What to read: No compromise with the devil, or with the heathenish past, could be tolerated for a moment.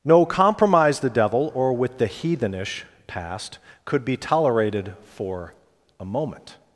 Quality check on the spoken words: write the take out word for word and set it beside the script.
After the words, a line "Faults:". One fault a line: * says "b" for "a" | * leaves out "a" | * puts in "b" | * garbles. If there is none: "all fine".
No compromise the devil, or with the heathenish past, could be tolerated for a moment.
Faults:
* leaves out "with"